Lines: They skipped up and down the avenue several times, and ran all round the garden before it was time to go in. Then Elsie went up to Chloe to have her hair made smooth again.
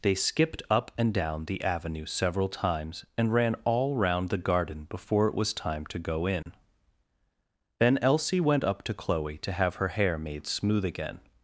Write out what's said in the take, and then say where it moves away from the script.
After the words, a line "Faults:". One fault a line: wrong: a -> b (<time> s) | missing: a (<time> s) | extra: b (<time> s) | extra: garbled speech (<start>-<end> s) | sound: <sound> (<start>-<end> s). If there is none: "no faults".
They skipped up and down the avenue several times, and ran all round the garden before it was time to go in. Then Elsie went up to Chloe to have her hair made smooth again.
Faults:
sound: dropout (6.4-6.5 s)